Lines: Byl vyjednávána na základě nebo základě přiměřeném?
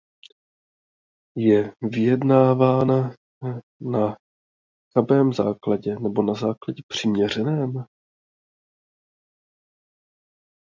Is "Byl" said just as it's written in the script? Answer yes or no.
no